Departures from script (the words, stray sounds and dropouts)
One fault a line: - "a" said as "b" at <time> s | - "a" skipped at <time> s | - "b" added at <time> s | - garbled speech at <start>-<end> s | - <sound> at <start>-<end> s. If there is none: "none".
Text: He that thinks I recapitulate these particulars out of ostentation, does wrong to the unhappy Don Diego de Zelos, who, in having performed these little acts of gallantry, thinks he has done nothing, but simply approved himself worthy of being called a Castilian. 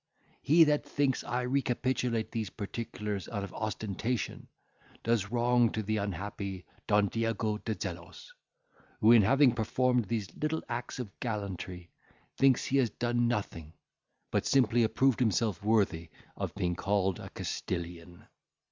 none